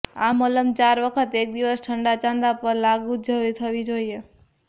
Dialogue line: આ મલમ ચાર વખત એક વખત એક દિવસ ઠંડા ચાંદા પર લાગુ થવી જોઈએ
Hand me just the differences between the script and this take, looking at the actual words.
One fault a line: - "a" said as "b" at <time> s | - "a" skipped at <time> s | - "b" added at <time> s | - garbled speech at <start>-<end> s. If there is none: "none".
- "વખત એક" skipped at 1.5 s